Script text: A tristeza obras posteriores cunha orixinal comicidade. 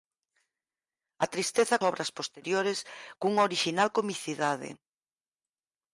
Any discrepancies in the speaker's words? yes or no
no